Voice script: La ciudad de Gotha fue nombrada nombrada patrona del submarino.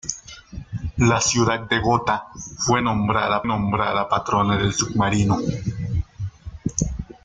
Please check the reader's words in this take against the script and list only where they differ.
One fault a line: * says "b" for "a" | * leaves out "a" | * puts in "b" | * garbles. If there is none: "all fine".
all fine